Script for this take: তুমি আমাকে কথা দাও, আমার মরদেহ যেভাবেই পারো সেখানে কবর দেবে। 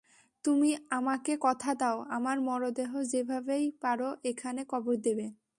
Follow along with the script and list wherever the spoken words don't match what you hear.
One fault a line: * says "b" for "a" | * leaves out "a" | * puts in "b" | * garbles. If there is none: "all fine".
* says "এখানে" for "সেখানে"